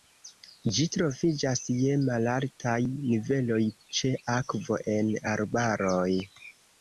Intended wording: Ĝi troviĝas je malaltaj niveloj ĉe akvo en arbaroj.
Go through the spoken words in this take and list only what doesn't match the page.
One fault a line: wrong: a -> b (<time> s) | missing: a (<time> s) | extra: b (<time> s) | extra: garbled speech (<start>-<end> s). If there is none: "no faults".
no faults